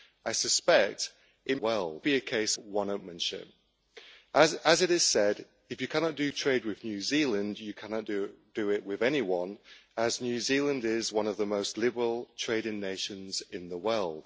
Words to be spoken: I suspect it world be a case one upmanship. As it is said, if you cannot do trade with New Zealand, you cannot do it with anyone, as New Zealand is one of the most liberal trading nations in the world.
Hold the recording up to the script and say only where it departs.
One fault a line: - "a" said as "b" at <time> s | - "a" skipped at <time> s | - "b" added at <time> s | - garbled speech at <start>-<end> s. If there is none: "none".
none